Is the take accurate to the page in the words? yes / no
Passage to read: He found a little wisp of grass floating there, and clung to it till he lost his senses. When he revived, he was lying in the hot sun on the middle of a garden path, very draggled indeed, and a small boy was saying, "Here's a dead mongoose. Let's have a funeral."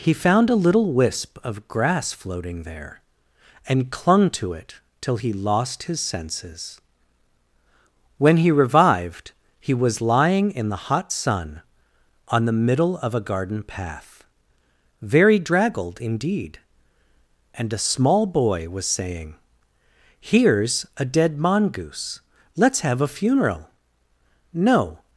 no